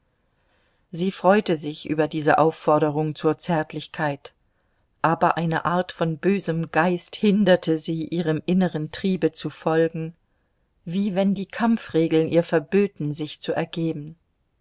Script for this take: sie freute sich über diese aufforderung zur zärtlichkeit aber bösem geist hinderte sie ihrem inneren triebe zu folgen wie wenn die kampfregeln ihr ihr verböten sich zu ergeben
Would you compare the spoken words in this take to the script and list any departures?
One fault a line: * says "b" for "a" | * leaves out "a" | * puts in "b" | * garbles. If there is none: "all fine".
* puts in "eine art von"
* leaves out "ihr"